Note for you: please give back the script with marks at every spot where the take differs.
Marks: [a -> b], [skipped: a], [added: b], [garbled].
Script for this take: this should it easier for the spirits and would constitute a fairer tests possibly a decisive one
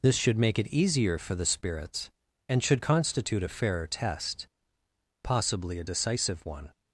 this should [added: make] it easier for the spirits and [would -> should] constitute a fairer [tests -> test] possibly a decisive one